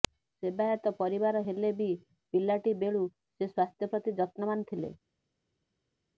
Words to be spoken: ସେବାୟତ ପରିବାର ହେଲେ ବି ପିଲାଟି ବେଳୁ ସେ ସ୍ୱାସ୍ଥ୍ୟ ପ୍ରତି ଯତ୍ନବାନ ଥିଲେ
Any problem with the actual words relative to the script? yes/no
no